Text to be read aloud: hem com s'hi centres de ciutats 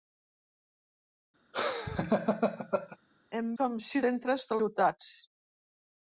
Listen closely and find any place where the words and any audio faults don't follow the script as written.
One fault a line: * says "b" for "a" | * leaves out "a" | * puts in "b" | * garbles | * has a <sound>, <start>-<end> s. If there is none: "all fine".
* has a laugh, 1.5-3.0 s